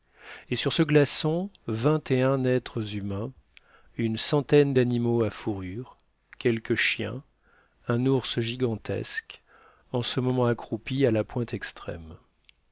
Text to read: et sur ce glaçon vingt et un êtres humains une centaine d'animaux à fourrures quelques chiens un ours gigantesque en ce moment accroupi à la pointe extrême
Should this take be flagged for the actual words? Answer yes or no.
no